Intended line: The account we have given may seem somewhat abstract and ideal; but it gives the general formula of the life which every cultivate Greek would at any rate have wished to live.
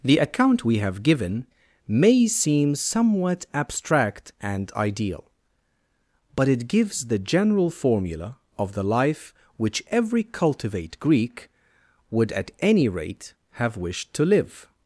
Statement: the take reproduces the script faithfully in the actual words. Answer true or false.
true